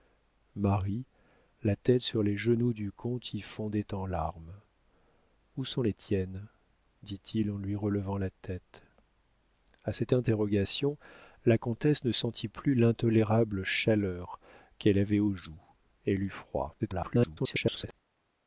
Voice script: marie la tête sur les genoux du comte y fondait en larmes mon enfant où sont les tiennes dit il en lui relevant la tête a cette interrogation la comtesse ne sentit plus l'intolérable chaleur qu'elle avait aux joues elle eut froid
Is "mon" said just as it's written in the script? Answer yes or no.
no